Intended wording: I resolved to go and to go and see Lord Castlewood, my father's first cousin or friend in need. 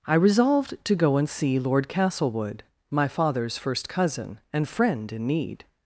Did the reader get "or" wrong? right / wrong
wrong